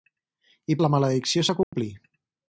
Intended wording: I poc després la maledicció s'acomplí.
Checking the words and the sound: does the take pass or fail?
fail